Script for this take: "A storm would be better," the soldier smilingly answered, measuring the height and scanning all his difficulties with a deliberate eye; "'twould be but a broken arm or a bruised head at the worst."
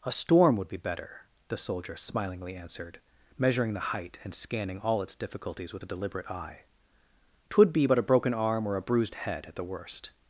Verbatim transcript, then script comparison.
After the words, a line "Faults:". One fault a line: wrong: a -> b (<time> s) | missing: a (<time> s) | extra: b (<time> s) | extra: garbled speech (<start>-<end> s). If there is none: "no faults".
"A storm would be better," the soldier smilingly answered, measuring the height and scanning all its difficulties with a deliberate eye; "'twould be but a broken arm or a bruised head at the worst."
Faults:
wrong: his -> its (5.0 s)